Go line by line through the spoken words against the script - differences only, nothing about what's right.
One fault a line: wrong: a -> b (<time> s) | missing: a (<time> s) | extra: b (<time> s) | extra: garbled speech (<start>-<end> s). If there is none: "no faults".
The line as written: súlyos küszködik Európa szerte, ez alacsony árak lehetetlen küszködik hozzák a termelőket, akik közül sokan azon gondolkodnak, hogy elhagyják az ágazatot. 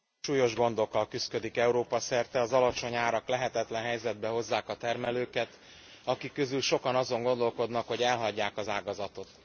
extra: gondokkal (0.6 s)
wrong: ez -> az (2.4 s)
wrong: küszködik -> helyzetbe (3.8 s)